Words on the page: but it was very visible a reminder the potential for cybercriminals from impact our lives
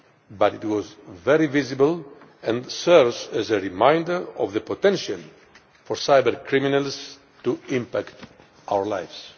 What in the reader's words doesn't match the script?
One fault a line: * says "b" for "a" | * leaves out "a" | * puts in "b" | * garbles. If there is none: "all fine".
* puts in "and serves as"
* puts in "of"
* says "to" for "from"